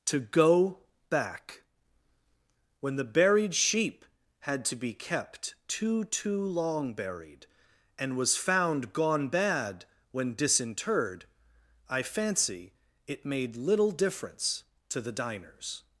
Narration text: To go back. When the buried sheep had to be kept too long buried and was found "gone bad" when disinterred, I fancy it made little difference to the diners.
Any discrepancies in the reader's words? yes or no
yes